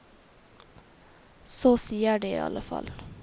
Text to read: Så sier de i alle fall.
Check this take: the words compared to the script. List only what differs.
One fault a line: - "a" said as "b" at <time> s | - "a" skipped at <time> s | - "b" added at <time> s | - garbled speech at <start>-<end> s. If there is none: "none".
none